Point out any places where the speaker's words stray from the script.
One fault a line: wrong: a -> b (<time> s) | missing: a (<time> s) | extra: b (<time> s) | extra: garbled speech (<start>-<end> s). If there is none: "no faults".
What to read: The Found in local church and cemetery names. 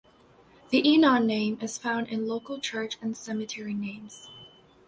extra: Enon name is (0.8 s)